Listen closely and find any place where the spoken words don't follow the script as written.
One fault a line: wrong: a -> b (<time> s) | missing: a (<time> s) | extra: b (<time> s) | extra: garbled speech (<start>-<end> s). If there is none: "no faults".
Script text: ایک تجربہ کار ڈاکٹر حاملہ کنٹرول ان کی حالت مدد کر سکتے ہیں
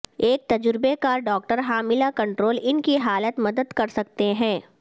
no faults